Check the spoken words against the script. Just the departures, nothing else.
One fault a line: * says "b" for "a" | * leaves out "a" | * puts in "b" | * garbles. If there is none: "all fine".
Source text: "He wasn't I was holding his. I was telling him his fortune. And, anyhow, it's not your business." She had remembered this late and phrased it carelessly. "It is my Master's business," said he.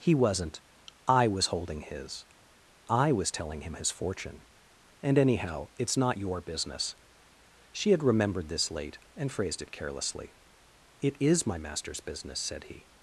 all fine